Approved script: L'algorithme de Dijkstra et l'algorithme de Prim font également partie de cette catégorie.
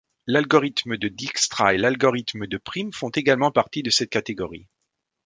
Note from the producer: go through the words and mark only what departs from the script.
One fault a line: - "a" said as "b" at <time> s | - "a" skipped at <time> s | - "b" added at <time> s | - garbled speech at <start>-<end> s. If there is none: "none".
none